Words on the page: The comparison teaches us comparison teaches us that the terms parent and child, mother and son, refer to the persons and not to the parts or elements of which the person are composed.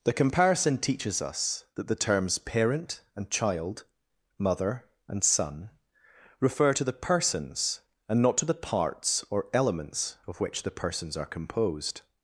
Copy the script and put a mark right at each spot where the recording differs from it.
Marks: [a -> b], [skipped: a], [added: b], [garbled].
The comparison teaches us [skipped: comparison teaches us] that the terms parent and child, mother and son, refer to the persons and not to the parts or elements of which the [person -> persons] are composed.